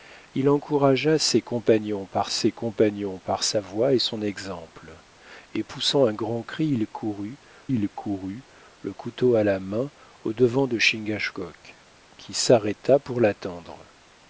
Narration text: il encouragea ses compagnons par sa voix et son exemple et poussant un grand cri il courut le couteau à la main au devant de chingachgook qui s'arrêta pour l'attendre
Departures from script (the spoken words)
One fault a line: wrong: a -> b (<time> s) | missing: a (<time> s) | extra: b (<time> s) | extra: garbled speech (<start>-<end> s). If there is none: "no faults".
extra: ses compagnons par (2.3 s)
extra: il courut (7.7 s)